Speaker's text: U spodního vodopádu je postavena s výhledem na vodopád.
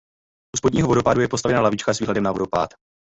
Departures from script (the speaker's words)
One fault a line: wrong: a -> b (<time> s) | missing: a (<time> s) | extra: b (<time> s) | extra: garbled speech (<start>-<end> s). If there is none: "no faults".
extra: lavička (1.6 s)